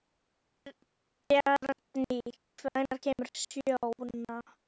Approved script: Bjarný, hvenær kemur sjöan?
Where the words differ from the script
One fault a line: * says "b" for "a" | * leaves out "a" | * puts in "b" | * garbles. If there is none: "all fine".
all fine